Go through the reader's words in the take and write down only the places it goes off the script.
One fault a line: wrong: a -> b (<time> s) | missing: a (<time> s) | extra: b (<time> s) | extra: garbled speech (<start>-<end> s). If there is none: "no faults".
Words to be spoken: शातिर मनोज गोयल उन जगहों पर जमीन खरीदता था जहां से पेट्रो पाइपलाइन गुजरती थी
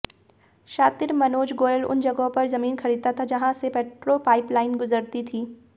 no faults